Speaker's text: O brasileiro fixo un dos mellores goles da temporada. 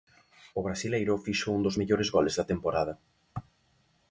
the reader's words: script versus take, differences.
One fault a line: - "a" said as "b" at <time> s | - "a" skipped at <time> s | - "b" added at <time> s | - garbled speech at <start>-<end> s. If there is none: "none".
none